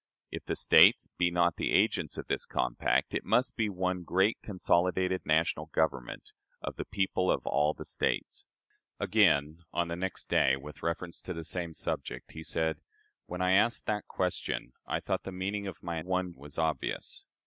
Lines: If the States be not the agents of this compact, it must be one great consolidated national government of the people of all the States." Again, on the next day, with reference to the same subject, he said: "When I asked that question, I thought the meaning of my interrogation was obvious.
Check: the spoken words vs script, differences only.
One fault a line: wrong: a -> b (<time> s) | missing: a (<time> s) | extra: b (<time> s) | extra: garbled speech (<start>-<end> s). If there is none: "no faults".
wrong: interrogation -> one (16.0 s)